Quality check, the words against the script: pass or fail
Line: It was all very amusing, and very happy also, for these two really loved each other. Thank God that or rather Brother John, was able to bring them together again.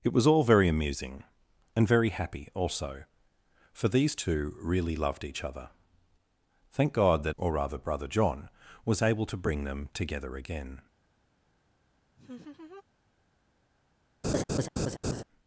pass